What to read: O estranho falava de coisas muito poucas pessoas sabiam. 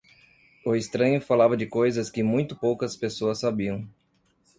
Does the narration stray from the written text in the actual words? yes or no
yes